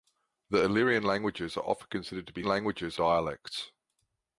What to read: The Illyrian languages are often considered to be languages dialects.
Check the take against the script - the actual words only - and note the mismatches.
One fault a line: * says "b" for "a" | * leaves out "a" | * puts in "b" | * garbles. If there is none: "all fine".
all fine